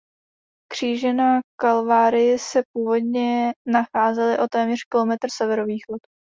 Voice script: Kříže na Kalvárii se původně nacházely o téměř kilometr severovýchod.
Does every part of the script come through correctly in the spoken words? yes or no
yes